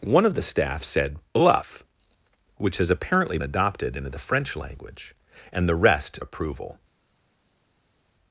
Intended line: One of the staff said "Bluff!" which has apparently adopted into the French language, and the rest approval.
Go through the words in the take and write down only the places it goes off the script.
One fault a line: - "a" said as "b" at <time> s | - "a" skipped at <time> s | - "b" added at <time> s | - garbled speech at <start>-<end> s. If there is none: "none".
none